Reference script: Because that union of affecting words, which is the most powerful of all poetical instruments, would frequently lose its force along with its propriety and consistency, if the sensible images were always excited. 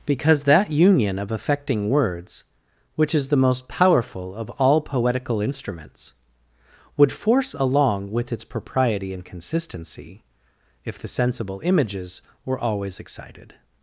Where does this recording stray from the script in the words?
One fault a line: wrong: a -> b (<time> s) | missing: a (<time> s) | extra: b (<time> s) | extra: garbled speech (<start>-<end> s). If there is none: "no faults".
missing: frequently lose its (7.1 s)